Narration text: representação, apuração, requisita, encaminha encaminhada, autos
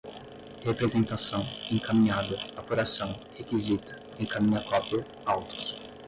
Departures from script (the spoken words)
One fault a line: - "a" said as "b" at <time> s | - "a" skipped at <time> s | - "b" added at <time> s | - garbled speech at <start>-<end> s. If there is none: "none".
- "encaminhada" added at 1.7 s
- "encaminhada" said as "cópia" at 4.6 s